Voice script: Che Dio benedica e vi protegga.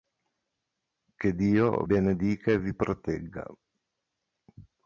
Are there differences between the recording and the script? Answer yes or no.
no